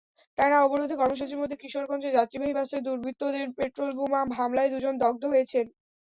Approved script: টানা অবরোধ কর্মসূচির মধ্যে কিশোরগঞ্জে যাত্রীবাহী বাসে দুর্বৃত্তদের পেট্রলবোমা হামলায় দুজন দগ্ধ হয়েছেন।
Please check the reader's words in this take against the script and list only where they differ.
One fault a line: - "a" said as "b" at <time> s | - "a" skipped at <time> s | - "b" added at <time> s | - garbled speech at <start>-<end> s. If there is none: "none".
none